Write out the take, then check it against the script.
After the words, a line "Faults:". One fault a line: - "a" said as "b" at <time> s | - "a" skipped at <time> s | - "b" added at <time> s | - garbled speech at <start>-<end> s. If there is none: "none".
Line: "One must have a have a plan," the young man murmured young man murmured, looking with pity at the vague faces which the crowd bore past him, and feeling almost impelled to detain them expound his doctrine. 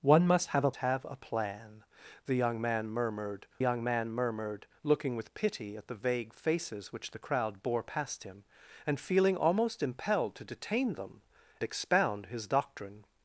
"One must have a have a plan," the young man murmured young man murmured, looking with pity at the vague faces which the crowd bore past him, and feeling almost impelled to detain them expound his doctrine.
Faults:
none